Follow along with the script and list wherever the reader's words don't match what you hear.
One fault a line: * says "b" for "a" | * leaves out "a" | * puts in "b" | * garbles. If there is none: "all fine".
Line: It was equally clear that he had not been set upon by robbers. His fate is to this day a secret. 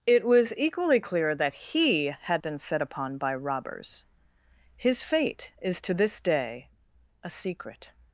* leaves out "not"